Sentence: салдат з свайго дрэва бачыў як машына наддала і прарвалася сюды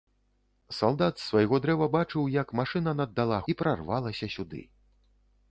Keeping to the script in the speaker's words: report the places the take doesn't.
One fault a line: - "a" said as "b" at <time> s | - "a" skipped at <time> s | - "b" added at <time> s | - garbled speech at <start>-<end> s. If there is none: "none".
none